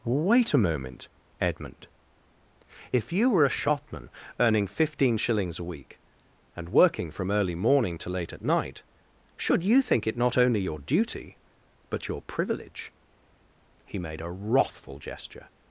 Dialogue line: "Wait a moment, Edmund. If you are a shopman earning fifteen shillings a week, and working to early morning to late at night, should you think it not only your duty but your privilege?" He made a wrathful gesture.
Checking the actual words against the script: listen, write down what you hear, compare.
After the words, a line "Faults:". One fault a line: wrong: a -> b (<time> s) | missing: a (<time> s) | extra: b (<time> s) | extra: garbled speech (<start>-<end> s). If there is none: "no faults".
"Wait a moment, Edmund. If you were a shopman earning fifteen shillings a week, and working from early morning to late at night, should you think it not only your duty but your privilege?" He made a wrathful gesture.
Faults:
wrong: are -> were (3.3 s)
wrong: to -> from (7.1 s)